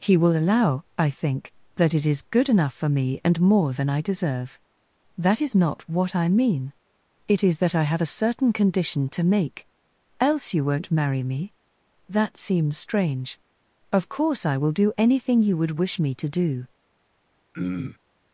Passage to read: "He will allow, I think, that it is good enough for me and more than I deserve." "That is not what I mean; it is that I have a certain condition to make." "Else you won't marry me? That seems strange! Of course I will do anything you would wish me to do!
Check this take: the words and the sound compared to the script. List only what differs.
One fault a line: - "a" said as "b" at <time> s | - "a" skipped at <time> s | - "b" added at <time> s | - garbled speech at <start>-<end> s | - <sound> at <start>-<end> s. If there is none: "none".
- throat clearing at 17.5-18.0 s